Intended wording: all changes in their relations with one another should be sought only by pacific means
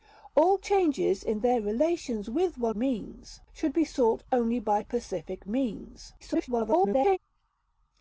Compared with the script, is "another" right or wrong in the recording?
wrong